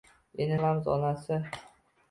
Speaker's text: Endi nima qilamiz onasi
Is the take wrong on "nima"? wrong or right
wrong